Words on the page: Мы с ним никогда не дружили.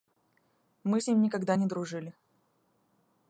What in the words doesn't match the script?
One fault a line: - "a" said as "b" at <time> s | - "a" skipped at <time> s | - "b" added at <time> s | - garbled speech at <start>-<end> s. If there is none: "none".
none